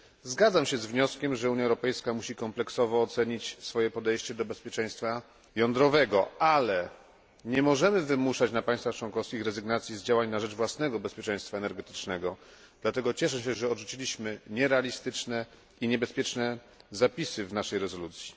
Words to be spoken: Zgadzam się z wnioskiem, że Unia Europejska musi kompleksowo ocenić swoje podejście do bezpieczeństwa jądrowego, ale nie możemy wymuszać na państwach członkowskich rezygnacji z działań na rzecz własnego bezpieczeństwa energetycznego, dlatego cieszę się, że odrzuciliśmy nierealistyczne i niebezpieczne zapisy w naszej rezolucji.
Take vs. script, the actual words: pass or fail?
pass